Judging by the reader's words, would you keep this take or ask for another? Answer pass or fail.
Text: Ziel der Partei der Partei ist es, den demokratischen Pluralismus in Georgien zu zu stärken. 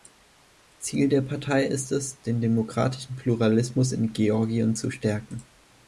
fail